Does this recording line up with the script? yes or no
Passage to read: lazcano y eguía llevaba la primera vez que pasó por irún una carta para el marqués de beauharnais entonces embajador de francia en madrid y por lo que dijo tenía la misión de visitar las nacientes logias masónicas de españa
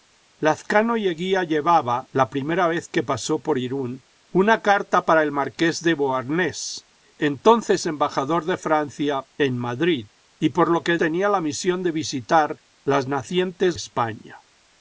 no